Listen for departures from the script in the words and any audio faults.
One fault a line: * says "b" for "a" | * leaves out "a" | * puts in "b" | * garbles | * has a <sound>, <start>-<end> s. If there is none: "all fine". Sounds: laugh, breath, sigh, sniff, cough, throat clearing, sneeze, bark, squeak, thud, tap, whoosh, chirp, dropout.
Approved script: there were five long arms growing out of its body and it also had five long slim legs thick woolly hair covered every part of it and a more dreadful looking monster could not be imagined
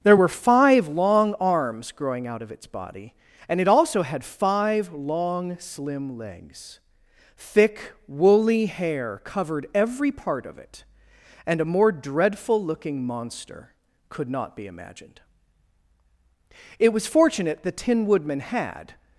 * puts in "it was fortunate the tin woodman had"